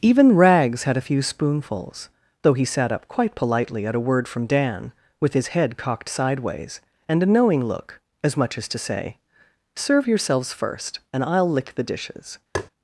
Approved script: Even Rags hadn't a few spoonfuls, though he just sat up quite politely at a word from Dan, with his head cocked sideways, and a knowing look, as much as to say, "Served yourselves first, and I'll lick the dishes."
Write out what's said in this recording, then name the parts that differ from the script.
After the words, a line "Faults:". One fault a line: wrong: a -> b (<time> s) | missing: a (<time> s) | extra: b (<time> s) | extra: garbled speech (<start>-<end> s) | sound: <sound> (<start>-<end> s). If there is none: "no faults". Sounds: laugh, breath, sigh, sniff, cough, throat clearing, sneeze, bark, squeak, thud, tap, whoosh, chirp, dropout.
Even Rags had a few spoonfuls, though he sat up quite politely at a word from Dan, with his head cocked sideways, and a knowing look, as much as to say, "Serve yourselves first, and I'll lick the dishes."
Faults:
wrong: hadn't -> had (0.8 s)
missing: just (2.6 s)
wrong: Served -> Serve (9.7 s)
sound: tap (12.5-12.7 s)